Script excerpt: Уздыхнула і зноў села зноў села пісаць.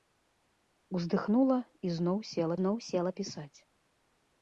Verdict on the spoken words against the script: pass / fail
pass